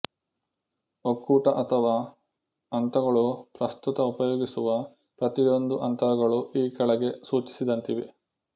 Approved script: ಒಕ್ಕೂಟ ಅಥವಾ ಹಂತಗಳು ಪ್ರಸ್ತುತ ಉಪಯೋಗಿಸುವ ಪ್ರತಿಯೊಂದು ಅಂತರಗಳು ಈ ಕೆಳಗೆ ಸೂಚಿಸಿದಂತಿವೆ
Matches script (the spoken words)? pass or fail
pass